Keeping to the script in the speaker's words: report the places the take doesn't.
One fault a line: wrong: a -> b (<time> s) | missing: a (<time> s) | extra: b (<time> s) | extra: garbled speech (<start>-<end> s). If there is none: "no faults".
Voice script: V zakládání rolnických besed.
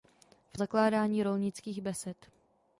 no faults